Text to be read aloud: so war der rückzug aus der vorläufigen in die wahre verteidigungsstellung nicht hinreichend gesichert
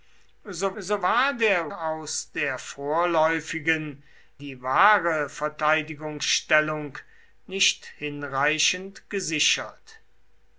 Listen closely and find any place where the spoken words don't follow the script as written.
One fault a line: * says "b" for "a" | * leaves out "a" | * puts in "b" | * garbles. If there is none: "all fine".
* puts in "so"
* leaves out "rückzug"
* leaves out "in"